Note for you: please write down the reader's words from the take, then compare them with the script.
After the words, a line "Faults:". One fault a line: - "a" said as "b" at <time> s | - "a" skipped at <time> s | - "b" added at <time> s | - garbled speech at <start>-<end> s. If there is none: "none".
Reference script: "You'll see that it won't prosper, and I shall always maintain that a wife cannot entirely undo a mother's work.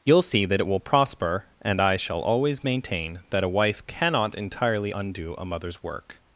"You'll see that it will prosper, and I shall always maintain that a wife cannot entirely undo a mother's work.
Faults:
- "won't" said as "will" at 0.7 s